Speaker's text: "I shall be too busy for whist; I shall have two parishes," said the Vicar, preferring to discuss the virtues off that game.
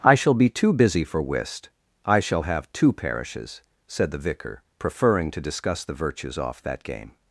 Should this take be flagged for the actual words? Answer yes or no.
no